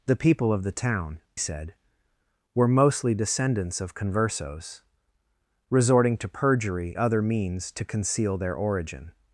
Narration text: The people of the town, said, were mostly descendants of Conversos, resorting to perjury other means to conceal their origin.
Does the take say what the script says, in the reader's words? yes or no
yes